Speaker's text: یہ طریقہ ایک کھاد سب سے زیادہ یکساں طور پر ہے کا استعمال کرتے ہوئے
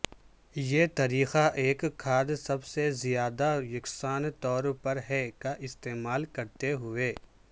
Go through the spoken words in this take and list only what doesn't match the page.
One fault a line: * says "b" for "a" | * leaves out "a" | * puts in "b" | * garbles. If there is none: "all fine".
all fine